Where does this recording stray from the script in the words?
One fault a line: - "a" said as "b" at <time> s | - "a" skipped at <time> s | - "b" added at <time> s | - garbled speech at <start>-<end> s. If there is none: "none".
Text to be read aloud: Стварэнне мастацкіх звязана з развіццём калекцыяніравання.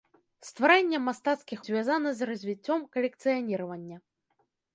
none